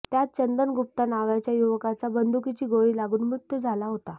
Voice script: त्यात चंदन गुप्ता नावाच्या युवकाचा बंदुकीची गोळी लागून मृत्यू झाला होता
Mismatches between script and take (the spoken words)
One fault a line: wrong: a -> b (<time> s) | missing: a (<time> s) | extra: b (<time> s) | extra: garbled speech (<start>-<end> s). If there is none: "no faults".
no faults